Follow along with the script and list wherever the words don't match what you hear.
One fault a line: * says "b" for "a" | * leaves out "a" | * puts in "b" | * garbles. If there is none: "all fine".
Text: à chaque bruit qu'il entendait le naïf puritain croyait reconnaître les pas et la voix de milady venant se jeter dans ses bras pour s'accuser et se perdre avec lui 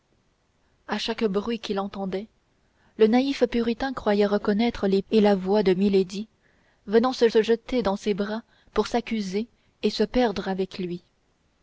* leaves out "pas"
* puts in "se"